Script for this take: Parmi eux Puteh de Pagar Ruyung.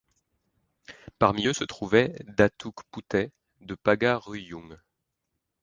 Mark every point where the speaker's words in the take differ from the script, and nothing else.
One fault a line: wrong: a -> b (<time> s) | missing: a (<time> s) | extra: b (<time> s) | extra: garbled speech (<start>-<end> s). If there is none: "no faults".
extra: se trouvait Datuk (1.5 s)